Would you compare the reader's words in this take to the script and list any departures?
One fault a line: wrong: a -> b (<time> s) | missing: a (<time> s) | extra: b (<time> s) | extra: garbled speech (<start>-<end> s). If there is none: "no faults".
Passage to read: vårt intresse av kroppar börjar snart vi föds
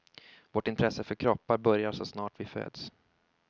wrong: av -> för (1.0 s)
extra: så (1.9 s)